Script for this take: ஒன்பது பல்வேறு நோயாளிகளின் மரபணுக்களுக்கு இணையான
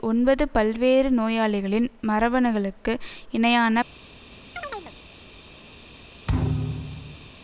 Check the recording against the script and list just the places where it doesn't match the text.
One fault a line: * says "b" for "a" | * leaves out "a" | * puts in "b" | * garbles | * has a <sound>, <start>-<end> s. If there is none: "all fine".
* has a chirp, 4.6-4.9 s
* has a thud, 6.3-7.3 s